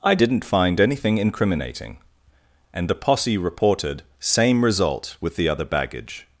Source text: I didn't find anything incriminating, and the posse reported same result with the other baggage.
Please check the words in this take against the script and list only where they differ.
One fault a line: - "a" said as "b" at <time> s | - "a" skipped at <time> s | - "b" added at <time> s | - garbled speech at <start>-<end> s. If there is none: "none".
none